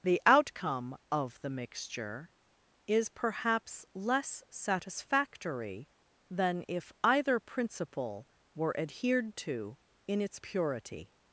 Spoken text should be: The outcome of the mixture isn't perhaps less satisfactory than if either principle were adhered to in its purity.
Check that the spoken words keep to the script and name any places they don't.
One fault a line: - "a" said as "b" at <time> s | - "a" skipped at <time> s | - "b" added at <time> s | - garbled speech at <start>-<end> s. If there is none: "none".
- "isn't" said as "is" at 2.9 s